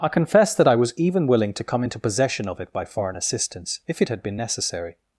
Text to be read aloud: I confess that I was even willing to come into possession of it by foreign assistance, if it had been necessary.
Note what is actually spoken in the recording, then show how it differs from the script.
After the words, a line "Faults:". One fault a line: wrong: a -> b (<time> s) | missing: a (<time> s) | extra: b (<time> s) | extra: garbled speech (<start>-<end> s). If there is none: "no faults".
I confess that I was even willing to come into possession of it by foreign assistance, if it had been necessary.
Faults:
no faults